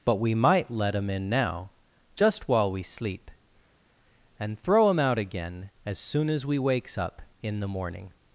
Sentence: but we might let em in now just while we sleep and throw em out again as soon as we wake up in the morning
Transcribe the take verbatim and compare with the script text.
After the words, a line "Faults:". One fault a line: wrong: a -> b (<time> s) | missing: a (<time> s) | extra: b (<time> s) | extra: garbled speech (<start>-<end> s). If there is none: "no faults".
but we might let em in now just while we sleep and throw em out again as soon as we wakes up in the morning
Faults:
wrong: wake -> wakes (6.6 s)